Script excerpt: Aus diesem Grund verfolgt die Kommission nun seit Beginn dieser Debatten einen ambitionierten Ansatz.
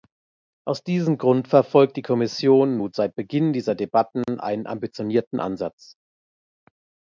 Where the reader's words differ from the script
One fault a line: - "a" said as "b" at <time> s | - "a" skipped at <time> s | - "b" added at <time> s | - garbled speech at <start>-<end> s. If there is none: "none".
none